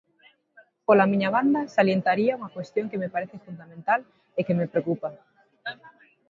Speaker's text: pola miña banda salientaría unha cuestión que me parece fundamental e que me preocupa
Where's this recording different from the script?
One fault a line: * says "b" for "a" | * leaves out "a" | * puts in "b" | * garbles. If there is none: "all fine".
all fine